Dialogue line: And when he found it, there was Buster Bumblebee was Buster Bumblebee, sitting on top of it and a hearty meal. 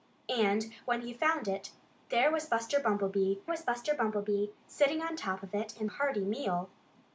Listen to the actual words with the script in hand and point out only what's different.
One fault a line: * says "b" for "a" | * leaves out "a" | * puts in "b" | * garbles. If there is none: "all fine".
all fine